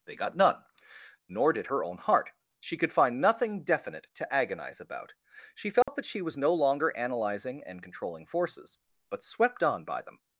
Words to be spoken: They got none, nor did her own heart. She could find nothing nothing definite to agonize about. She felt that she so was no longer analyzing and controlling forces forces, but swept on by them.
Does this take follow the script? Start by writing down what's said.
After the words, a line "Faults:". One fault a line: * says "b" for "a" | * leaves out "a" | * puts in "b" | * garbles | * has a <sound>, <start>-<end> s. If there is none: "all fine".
They got none, nor did her own heart. She could find nothing definite to agonize about. She felt that she was no longer analyzing and controlling forces, but swept on by them.
Faults:
* leaves out "nothing"
* has a dropout, 5.8-5.9 s
* leaves out "so"
* leaves out "forces"